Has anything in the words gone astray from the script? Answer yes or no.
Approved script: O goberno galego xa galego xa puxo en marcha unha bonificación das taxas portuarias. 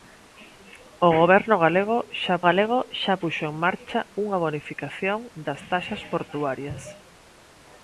no